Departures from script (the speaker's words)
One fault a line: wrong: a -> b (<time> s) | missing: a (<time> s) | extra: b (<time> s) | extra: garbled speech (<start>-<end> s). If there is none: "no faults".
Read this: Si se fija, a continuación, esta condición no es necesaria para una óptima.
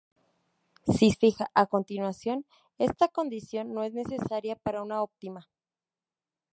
missing: se (1.1 s)